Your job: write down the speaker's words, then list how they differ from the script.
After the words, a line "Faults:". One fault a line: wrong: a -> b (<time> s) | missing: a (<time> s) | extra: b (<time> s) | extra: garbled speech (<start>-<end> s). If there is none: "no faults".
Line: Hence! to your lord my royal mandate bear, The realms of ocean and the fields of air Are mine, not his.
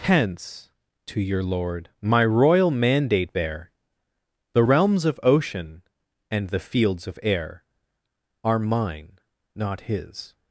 Hence! to your lord my royal mandate bear, The realms of ocean and the fields of air Are mine, not his.
Faults:
no faults